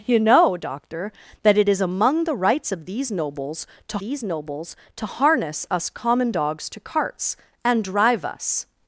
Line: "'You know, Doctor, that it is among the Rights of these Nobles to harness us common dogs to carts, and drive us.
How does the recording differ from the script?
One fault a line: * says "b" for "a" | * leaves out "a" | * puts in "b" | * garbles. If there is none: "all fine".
* puts in "these Nobles to"